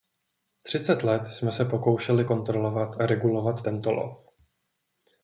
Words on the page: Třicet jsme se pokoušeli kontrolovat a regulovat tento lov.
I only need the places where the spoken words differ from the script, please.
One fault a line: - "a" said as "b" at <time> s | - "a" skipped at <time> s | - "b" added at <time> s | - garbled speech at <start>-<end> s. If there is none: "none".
- "let" added at 1.0 s